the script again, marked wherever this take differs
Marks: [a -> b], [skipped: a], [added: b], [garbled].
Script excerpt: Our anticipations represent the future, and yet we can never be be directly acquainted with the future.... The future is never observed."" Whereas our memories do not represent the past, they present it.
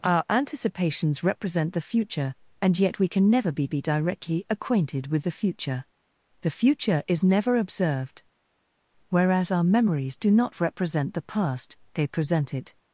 Our anticipations represent the future, and yet we can never be be directly acquainted with the future.... The future is never observed."" Whereas our memories do not represent the past, they present it.